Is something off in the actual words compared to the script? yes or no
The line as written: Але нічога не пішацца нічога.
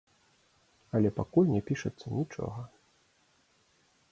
yes